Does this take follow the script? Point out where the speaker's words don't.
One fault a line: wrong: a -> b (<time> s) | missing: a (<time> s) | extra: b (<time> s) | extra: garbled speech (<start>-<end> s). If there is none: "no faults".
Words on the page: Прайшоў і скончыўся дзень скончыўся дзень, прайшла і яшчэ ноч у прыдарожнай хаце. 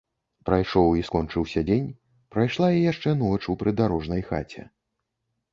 missing: скончыўся дзень (1.9 s)